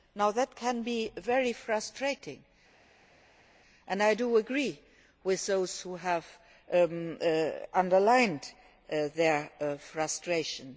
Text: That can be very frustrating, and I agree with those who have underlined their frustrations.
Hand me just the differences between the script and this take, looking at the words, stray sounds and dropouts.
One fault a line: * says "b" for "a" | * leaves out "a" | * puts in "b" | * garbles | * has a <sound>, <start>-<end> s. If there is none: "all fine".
all fine